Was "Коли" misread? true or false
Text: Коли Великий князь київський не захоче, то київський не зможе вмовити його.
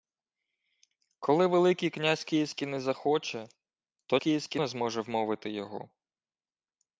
false